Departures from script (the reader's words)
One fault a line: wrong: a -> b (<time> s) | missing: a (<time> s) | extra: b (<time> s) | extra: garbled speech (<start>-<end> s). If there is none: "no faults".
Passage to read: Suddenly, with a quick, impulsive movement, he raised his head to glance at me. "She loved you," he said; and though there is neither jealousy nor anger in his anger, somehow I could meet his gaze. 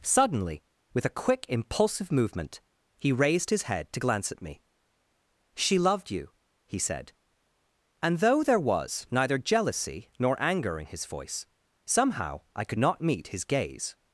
wrong: is -> was (8.6 s)
wrong: anger -> voice (11.0 s)
extra: not (12.8 s)